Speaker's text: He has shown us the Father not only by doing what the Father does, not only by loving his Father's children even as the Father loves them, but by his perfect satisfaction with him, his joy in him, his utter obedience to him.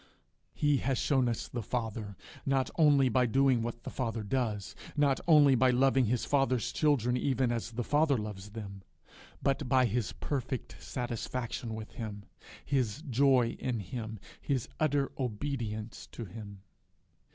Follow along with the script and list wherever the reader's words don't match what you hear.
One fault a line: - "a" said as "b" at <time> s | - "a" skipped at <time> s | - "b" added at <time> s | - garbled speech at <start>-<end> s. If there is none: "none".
none